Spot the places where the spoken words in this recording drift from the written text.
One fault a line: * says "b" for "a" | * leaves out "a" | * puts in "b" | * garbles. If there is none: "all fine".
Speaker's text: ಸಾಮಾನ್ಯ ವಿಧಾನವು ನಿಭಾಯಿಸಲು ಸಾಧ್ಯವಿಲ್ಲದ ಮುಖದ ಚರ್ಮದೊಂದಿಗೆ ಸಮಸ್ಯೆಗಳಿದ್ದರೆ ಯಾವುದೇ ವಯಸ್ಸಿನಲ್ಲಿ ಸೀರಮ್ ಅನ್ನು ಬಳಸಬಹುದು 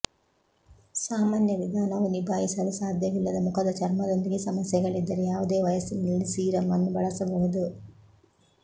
all fine